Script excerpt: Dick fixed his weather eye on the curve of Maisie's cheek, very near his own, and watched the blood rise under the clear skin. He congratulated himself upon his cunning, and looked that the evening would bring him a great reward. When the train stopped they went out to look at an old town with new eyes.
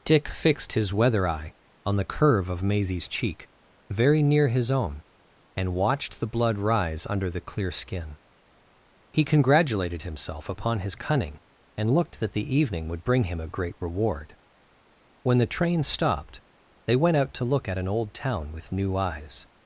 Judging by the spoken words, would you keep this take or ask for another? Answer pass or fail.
pass